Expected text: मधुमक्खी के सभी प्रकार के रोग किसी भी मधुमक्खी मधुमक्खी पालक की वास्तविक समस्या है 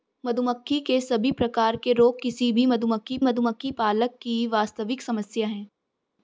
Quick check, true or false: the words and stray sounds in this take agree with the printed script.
true